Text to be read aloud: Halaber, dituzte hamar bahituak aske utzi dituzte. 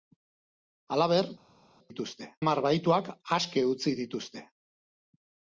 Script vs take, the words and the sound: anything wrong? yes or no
no